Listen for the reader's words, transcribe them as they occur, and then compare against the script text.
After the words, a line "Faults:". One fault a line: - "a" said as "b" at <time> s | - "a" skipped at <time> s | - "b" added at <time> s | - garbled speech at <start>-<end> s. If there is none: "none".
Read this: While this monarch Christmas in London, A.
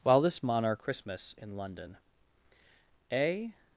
While this monarch Christmas in London, A.
Faults:
none